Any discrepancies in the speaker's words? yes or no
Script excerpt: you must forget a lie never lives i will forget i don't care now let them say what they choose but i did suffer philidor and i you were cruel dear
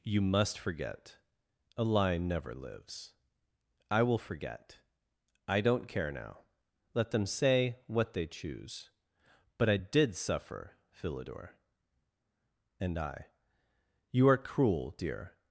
yes